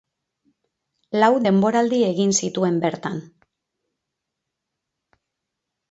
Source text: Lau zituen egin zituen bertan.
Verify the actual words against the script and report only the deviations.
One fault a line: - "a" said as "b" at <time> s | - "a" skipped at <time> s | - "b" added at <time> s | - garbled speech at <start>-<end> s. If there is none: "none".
- "zituen" said as "denboraldi" at 1.5 s